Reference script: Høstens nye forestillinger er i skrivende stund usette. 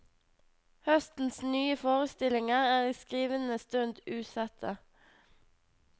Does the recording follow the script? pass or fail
pass